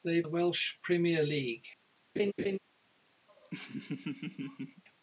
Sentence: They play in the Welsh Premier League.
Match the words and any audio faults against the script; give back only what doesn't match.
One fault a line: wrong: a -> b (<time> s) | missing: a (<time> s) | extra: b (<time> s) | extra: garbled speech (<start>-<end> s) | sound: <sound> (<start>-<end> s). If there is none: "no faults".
missing: play in (0.2 s)
sound: laugh (2.2-2.6 s)
sound: laugh (3.3-4.8 s)